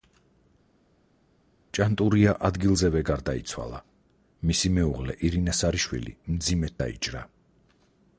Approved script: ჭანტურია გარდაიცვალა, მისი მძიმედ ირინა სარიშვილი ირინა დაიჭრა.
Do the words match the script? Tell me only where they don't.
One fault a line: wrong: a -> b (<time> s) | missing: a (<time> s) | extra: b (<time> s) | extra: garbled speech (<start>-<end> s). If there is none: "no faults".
extra: ადგილზევე (2.5 s)
wrong: მძიმედ -> მეუღლე (4.8 s)
wrong: ირინა -> მძიმედ (6.4 s)